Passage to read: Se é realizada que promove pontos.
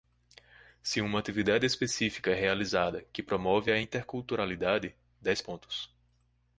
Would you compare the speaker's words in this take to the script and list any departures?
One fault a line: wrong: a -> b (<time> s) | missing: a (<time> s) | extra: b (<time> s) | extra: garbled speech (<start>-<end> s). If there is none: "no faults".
extra: uma atividade específica (1.0 s)
extra: a interculturalidade dez (3.7 s)